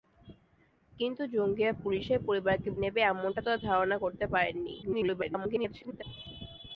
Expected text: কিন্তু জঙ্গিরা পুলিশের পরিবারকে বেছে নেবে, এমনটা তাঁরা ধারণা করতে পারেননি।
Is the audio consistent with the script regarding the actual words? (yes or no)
no